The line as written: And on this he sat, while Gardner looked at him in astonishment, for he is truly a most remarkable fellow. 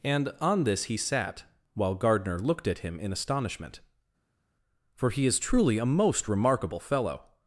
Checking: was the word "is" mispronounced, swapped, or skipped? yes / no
no